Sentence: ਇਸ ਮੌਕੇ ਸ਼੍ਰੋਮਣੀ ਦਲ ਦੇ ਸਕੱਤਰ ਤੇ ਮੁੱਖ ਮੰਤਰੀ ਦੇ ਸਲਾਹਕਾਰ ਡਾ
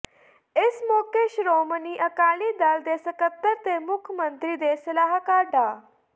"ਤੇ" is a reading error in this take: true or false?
false